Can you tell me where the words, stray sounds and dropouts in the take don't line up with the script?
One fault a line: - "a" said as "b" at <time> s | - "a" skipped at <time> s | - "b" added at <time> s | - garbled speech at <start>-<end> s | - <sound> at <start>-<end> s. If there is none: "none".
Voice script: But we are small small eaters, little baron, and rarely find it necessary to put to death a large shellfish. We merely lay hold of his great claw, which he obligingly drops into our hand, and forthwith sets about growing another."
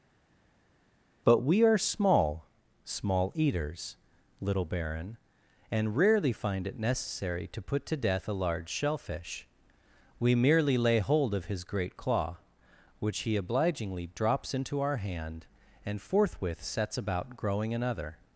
none